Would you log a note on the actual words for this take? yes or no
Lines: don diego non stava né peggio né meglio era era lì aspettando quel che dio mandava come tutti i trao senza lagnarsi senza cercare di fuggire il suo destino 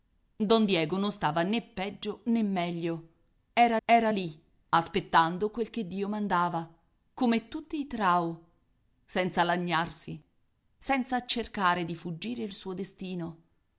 no